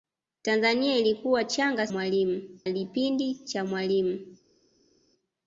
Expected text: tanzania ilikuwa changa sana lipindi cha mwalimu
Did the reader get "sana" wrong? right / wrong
wrong